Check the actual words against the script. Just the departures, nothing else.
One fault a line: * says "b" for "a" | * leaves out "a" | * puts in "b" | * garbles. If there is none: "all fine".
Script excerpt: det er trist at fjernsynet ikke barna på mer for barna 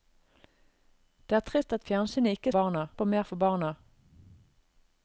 all fine